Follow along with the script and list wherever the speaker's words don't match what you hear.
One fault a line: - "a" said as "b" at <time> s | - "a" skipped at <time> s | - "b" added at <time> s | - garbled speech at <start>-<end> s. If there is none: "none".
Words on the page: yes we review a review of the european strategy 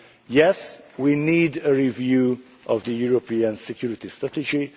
- "review" said as "need" at 1.1 s
- "security" added at 3.6 s